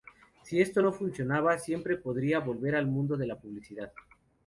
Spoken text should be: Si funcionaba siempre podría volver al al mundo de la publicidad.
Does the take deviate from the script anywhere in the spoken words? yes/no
yes